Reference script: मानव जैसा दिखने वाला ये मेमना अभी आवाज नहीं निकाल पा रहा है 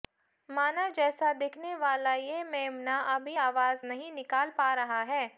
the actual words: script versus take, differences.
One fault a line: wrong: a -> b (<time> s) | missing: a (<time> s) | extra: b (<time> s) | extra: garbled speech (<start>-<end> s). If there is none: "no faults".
no faults